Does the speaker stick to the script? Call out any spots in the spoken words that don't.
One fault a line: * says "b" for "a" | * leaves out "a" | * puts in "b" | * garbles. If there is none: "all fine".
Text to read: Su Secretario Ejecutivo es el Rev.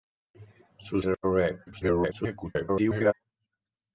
* leaves out "Secretario Ejecutivo es"
* garbles